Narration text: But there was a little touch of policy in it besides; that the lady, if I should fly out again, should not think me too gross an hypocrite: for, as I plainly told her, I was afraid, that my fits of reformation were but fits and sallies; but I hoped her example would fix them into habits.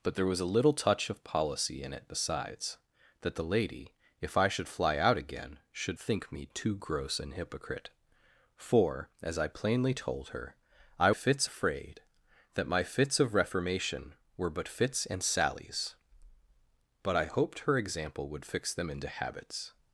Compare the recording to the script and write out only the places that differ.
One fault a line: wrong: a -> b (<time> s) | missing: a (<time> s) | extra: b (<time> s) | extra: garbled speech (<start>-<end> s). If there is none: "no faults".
missing: not (6.0 s)
wrong: was -> fits (11.1 s)